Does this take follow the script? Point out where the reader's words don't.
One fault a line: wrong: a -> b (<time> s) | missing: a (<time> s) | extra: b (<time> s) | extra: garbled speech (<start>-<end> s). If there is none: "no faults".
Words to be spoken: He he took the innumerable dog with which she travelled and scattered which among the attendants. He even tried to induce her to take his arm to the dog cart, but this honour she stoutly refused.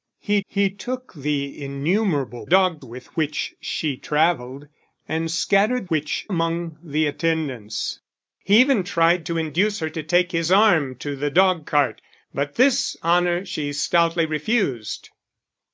no faults